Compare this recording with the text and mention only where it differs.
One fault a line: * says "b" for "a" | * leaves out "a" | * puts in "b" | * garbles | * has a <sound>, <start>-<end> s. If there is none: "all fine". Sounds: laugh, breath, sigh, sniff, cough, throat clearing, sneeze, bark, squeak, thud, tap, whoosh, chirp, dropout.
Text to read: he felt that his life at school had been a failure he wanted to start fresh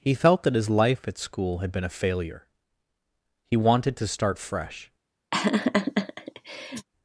* has a laugh, 5.3-6.9 s